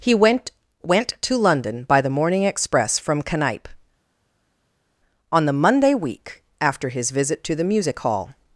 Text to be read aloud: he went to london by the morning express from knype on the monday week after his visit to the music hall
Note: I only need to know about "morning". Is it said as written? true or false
true